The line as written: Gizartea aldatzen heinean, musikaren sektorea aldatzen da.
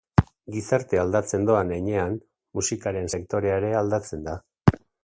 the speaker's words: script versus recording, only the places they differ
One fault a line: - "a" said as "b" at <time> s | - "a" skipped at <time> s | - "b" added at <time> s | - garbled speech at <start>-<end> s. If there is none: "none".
- "doan" added at 1.5 s
- "ere" added at 3.6 s